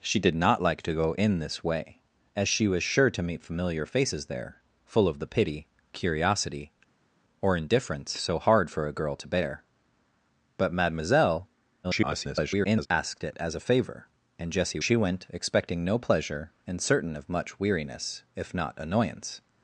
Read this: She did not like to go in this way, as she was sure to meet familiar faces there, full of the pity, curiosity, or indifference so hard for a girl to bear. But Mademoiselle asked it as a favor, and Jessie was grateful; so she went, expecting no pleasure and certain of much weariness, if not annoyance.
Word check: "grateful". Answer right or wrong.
wrong